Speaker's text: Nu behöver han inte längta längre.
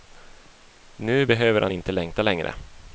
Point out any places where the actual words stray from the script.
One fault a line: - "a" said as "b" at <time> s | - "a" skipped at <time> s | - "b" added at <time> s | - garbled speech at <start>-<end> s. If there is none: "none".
none